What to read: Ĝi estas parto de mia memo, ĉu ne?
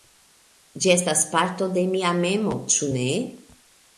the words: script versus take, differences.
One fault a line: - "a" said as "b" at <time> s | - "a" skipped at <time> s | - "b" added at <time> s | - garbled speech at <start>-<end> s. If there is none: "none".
none